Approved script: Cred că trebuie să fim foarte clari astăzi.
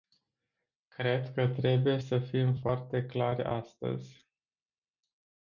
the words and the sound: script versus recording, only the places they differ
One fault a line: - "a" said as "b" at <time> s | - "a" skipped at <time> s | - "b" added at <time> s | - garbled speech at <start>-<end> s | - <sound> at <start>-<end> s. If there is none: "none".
none